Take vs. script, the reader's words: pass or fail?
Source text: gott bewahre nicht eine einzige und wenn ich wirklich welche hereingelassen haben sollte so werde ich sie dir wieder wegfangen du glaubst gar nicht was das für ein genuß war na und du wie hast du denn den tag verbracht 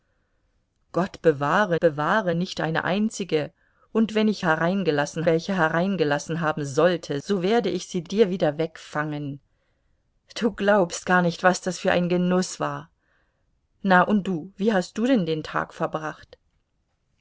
fail